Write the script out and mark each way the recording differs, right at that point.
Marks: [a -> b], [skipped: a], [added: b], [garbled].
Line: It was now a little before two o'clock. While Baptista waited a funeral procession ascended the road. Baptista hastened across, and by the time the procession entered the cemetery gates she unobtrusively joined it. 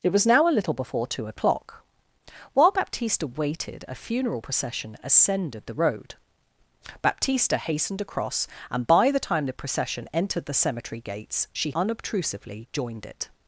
It was now a little before two o'clock. While Baptista waited a funeral procession ascended the road. Baptista hastened across, and by the time the procession entered the cemetery gates she unobtrusively joined it.